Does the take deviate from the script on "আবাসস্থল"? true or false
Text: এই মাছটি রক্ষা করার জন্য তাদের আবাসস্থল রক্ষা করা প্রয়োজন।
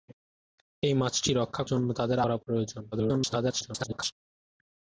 true